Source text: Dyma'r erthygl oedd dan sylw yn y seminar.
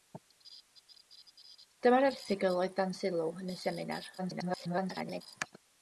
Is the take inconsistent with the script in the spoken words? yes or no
yes